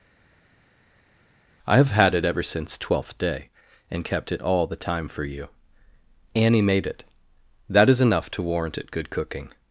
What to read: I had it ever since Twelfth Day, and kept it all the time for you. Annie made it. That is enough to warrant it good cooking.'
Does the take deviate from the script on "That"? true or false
false